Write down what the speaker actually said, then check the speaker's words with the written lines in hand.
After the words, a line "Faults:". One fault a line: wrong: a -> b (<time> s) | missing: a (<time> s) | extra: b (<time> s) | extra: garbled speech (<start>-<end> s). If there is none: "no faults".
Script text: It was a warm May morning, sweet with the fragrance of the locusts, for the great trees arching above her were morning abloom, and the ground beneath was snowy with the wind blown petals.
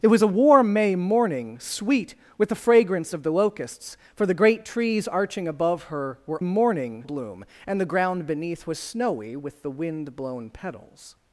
It was a warm May morning, sweet with the fragrance of the locusts, for the great trees arching above her were morning abloom, and the ground beneath was snowy with the wind blown petals.
Faults:
no faults